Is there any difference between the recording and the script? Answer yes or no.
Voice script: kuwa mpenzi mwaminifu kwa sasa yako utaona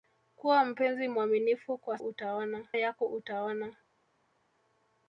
yes